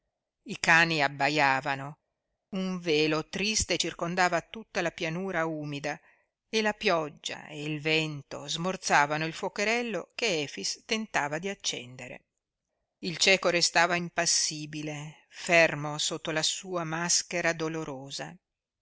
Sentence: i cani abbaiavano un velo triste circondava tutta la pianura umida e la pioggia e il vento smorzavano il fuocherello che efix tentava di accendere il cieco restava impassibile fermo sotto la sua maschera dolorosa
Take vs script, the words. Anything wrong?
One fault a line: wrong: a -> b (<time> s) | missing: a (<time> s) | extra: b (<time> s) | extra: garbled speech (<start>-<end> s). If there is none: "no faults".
no faults